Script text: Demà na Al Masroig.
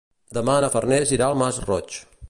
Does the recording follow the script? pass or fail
fail